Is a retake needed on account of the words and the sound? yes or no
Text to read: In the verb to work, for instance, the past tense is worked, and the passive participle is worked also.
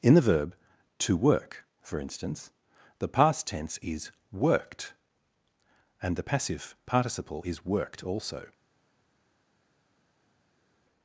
no